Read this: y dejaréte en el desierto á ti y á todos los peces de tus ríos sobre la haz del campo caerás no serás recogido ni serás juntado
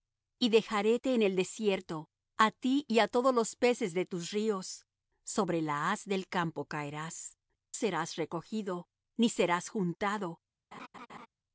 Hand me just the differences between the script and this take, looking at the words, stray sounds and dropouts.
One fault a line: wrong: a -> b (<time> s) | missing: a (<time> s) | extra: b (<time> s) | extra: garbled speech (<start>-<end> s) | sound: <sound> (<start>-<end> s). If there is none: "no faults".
missing: no (7.4 s)
sound: laugh (10.7-11.3 s)